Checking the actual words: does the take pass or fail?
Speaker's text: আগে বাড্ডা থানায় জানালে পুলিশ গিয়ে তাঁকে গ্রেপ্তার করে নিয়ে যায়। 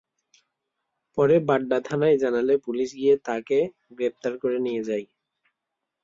fail